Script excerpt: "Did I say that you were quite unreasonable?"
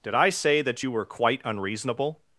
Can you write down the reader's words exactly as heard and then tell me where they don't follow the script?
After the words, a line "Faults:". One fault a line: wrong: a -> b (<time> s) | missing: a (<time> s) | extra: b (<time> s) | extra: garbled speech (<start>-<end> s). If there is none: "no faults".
"Did I say that you were quite unreasonable?"
Faults:
no faults